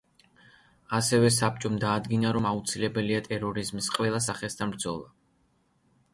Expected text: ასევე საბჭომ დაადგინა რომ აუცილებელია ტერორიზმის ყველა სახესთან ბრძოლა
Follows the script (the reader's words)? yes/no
yes